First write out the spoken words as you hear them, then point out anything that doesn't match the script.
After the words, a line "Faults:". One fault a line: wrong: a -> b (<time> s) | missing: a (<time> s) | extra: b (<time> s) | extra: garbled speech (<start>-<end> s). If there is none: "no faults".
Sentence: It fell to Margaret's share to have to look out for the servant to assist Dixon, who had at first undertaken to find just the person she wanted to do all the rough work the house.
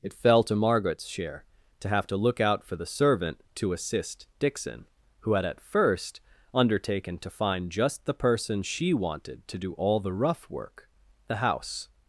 It fell to Margaret's share to have to look out for the servant to assist Dixon, who had at first undertaken to find just the person she wanted to do all the rough work the house.
Faults:
no faults